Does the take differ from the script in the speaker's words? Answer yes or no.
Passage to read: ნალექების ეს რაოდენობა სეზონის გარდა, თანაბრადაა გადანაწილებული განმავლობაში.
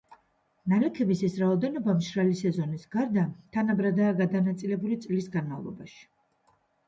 yes